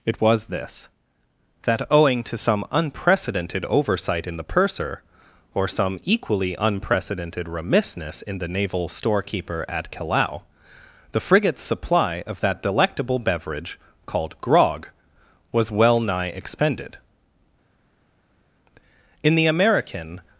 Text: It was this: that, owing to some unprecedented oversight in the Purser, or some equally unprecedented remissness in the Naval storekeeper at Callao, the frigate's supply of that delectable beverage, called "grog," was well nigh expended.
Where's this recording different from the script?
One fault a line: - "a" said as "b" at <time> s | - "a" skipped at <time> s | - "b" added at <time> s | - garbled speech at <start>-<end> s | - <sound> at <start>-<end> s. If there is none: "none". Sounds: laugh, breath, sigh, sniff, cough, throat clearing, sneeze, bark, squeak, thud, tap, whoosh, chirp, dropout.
- "In the American" added at 19.2 s